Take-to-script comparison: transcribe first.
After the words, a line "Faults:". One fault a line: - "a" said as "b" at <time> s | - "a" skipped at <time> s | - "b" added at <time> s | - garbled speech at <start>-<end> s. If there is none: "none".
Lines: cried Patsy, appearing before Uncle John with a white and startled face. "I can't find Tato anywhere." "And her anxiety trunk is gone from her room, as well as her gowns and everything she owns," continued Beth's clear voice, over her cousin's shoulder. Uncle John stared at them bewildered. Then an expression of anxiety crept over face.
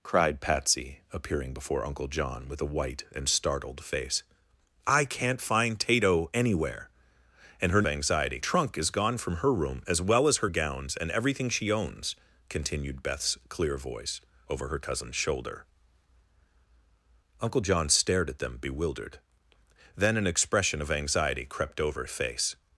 cried Patsy, appearing before Uncle John with a white and startled face. "I can't find Tato anywhere." "And her anxiety trunk is gone from her room, as well as her gowns and everything she owns," continued Beth's clear voice, over her cousin's shoulder. Uncle John stared at them bewildered. Then an expression of anxiety crept over face.
Faults:
none